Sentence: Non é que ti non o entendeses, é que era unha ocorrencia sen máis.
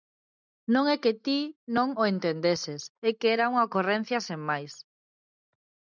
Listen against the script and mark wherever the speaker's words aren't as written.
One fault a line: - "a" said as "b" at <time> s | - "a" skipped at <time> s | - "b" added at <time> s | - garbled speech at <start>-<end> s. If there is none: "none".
none